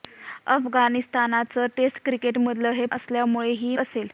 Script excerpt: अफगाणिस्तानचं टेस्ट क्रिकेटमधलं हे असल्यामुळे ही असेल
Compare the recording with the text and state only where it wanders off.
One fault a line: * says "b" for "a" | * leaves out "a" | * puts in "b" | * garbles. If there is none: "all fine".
all fine